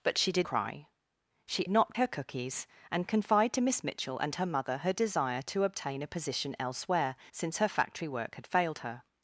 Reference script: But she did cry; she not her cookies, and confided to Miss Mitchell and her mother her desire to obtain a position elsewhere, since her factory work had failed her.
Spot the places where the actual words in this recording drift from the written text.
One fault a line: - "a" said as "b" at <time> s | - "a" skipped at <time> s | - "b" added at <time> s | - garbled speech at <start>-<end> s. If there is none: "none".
none